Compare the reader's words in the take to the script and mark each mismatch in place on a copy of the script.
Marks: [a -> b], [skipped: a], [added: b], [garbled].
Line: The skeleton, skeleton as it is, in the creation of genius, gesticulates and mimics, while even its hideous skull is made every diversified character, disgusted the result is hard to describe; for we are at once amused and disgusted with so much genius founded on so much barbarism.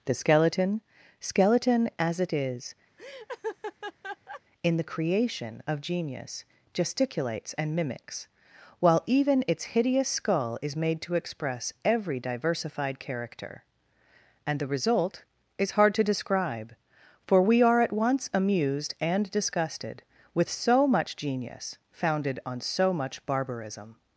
The skeleton, skeleton as it is, in the creation of genius, gesticulates and mimics, while even its hideous skull is made [added: to express] every diversified character, [disgusted -> and] the result is hard to describe; for we are at once amused and disgusted with so much genius founded on so much barbarism.